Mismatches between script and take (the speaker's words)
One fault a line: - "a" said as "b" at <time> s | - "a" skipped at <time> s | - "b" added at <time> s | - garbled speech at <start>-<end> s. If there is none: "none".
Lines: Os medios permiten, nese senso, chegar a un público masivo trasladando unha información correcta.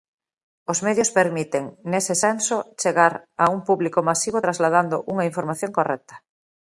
none